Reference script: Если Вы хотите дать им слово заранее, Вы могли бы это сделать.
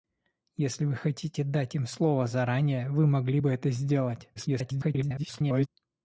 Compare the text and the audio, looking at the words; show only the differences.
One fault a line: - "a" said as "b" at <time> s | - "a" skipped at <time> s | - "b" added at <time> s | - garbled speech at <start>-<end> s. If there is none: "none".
- garbled speech at 4.4-5.7 s